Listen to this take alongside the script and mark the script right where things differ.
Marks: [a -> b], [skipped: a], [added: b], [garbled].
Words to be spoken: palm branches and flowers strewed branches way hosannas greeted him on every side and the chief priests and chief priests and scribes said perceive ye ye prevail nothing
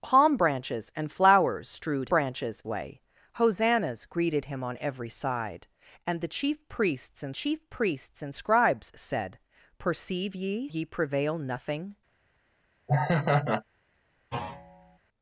palm branches and flowers strewed branches way hosannas greeted him on every side and the chief priests and chief priests and scribes said perceive ye ye prevail nothing